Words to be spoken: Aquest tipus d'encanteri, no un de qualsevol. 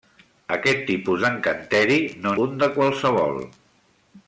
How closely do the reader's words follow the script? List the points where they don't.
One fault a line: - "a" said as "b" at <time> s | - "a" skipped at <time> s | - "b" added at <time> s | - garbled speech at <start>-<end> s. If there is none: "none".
none